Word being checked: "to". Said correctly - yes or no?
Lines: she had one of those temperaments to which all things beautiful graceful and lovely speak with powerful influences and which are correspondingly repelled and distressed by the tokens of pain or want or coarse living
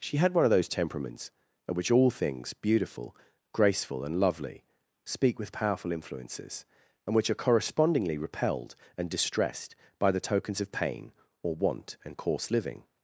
no